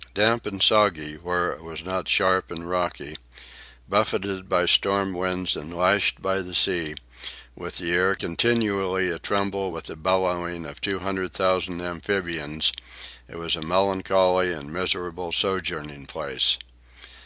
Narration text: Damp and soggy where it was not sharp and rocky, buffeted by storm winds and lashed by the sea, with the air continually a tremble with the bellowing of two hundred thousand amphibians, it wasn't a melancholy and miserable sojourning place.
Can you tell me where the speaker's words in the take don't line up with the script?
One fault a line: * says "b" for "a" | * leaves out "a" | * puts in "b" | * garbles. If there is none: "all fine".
* says "was" for "wasn't"